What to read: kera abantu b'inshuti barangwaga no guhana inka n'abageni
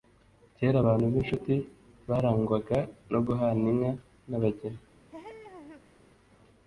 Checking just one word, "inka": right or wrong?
right